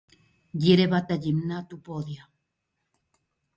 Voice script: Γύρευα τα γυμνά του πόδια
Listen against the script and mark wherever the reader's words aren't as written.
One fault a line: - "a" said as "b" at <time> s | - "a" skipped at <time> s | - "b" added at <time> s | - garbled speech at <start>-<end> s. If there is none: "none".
none